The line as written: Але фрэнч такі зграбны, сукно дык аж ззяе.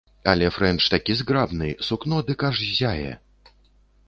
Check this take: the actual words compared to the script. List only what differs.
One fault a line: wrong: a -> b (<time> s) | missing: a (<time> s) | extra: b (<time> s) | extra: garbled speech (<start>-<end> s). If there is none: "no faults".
no faults